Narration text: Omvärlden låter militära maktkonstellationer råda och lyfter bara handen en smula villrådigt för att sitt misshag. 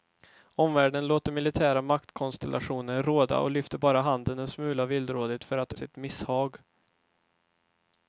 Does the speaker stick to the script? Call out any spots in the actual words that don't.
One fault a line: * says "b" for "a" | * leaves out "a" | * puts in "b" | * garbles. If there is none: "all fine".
all fine